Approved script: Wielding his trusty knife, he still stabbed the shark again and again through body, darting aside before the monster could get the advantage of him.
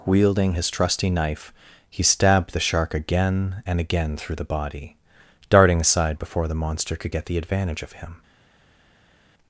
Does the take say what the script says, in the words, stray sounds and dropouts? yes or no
no